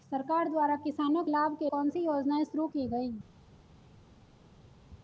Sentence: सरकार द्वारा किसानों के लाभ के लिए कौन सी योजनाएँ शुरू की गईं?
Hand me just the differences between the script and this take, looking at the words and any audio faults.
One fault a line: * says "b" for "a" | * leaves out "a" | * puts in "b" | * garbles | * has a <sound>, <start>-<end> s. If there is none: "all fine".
* leaves out "के"
* leaves out "लिए"